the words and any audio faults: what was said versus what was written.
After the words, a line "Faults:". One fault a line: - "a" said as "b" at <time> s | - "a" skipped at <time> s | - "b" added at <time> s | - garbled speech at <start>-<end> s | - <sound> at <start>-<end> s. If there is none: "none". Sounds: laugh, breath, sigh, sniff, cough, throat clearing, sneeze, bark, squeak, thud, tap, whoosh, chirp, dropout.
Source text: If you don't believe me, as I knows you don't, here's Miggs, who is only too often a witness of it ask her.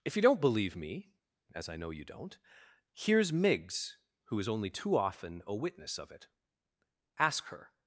If you don't believe me, as I know you don't, here's Miggs, who is only too often a witness of it ask her.
Faults:
- "knows" said as "know" at 1.8 s